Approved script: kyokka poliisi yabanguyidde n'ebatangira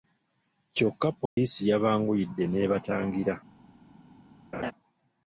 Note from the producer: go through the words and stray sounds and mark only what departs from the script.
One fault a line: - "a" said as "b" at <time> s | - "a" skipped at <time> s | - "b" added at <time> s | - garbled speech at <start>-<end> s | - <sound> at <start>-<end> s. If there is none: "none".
- dropout at 1.3-1.4 s
- laugh at 4.5-4.7 s